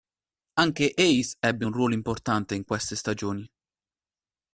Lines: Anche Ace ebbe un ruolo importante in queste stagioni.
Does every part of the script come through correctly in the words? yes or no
yes